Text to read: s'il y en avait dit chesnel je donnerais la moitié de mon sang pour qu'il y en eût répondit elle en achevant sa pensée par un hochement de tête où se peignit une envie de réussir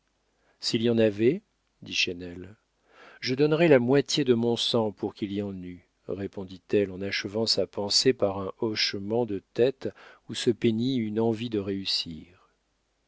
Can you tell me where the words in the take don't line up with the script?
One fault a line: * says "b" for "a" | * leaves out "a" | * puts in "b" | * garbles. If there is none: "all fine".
all fine